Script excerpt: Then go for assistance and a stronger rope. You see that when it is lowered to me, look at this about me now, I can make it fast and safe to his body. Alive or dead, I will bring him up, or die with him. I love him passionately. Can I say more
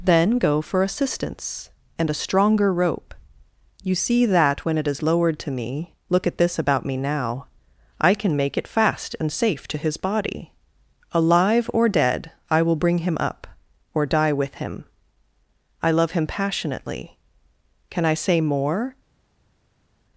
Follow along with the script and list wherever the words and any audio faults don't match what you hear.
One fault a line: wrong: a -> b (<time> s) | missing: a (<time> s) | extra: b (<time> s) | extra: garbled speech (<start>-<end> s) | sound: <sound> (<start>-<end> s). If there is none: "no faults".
no faults